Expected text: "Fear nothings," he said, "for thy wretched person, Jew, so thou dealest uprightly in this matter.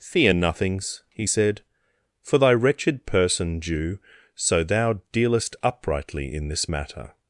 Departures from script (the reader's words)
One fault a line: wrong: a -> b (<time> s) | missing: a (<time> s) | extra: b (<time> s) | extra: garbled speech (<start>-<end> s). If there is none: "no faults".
no faults